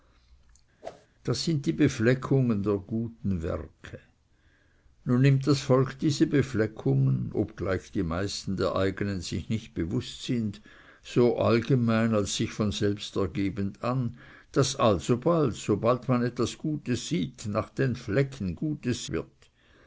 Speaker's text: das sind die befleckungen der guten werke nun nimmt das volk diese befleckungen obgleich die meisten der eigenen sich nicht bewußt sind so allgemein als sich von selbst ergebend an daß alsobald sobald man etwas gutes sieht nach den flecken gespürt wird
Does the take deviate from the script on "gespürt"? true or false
true